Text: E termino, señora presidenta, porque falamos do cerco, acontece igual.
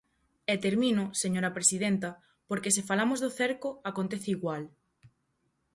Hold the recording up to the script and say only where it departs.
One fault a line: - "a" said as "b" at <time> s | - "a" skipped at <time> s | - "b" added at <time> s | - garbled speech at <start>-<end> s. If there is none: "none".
- "se" added at 2.8 s